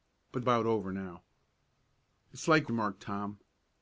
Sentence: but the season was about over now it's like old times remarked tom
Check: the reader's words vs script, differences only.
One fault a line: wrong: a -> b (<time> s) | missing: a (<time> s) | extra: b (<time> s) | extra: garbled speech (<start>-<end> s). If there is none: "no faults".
missing: the season was (0.4 s)
missing: old times (2.7 s)